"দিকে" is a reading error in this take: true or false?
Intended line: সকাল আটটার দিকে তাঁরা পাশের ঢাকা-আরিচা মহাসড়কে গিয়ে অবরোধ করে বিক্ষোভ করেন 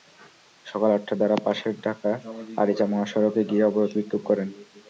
true